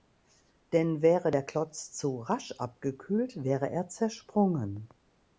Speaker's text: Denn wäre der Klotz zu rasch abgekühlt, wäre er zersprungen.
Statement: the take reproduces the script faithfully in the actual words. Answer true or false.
true